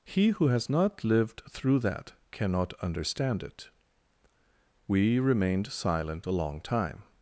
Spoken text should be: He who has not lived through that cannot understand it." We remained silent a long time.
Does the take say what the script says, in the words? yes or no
yes